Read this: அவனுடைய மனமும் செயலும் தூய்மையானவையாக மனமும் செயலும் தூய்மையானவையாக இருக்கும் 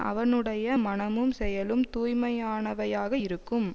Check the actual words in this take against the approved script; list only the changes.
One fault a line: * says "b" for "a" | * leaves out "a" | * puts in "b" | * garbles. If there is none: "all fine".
* leaves out "மனமும் செயலும் தூய்மையானவையாக"